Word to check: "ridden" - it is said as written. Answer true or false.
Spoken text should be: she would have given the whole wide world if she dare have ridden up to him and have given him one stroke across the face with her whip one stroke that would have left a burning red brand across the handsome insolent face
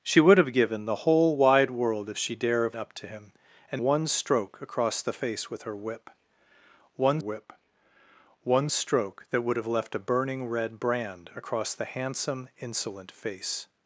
false